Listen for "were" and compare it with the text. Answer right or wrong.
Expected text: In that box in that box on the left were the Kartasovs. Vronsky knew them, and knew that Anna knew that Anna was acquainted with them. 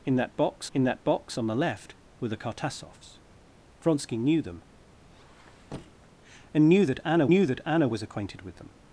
right